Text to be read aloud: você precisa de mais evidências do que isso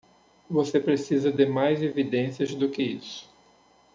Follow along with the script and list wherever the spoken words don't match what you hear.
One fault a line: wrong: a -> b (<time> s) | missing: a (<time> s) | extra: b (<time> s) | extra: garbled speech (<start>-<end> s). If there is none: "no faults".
no faults